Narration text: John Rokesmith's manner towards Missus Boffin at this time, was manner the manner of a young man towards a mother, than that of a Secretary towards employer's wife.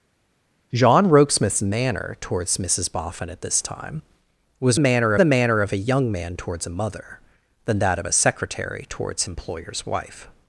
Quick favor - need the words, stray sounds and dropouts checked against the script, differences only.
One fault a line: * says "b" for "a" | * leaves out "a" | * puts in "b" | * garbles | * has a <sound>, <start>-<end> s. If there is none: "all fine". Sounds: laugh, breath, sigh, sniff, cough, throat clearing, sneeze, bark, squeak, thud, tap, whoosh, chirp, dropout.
all fine